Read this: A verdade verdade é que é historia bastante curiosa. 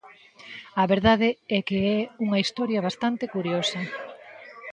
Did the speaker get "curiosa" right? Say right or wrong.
right